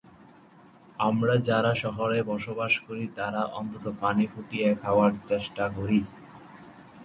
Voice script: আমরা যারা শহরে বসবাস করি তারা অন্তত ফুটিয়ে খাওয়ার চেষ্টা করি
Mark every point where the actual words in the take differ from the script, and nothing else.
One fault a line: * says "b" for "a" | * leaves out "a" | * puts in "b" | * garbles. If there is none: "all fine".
* puts in "পানি"